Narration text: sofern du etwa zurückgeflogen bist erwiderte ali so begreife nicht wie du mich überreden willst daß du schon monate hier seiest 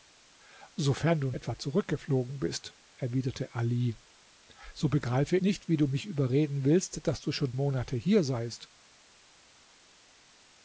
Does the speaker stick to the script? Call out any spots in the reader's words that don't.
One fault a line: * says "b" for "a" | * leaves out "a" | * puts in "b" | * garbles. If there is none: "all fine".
all fine